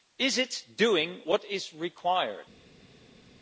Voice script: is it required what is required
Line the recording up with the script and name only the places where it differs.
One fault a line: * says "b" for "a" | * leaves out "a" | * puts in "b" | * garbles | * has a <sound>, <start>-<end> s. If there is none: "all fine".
* says "doing" for "required"